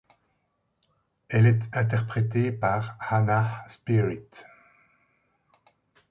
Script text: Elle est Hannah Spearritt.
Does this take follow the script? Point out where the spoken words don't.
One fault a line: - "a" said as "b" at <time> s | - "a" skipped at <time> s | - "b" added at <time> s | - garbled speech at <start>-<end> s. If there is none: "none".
- "interprétée par" added at 1.7 s